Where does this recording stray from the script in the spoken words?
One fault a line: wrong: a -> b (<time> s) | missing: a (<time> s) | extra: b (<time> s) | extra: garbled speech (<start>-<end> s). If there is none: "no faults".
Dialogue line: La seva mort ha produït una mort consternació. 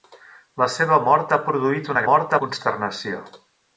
no faults